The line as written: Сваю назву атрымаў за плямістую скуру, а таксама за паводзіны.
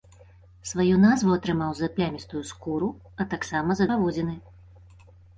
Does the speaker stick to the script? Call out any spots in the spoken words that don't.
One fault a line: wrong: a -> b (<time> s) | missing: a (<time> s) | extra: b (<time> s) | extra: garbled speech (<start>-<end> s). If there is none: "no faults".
no faults